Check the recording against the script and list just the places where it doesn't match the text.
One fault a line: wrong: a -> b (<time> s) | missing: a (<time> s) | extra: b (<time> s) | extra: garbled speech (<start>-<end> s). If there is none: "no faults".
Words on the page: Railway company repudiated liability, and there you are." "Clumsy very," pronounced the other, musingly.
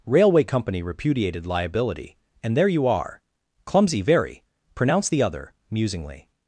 no faults